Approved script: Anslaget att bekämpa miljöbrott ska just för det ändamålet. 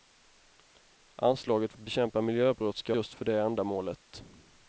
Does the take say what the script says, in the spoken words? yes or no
yes